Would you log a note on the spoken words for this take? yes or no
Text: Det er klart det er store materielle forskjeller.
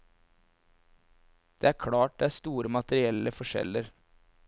no